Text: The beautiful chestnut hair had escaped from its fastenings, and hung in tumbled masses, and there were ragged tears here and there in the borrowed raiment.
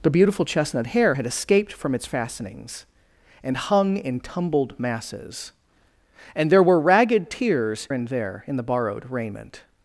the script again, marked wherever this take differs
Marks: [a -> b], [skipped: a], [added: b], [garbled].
The beautiful chestnut hair had escaped from its fastenings, and hung in tumbled masses, and there were ragged tears [skipped: here] and there in the borrowed raiment.